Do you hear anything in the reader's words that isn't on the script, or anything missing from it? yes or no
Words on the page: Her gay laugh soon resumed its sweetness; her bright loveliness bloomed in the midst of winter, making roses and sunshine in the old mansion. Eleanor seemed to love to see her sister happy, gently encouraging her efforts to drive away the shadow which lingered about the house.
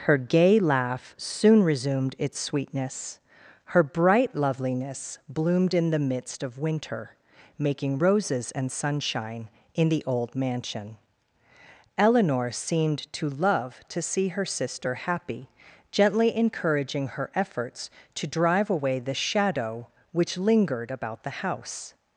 no